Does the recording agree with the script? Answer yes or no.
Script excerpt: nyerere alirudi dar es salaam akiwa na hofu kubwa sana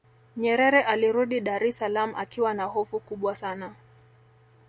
yes